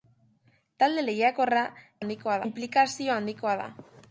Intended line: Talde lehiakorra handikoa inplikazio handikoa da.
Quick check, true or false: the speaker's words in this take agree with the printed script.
true